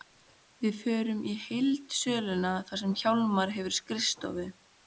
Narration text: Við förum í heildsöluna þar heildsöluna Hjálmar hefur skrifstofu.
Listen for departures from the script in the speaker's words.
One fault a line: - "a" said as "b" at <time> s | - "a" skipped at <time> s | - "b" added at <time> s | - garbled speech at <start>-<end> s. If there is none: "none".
- "heildsöluna" said as "sem" at 2.9 s